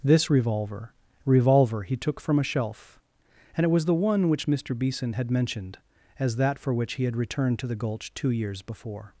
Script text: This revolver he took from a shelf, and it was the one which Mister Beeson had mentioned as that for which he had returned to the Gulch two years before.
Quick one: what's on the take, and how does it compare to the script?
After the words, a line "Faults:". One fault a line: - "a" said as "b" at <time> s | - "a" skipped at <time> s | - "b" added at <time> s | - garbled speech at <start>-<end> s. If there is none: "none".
This revolver revolver he took from a shelf, and it was the one which Mister Beeson had mentioned as that for which he had returned to the Gulch two years before.
Faults:
- "revolver" added at 1.2 s